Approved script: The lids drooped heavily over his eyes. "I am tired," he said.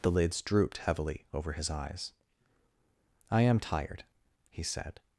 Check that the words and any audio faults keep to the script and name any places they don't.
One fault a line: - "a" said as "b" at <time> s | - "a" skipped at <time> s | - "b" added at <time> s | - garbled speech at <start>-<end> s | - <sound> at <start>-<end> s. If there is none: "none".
none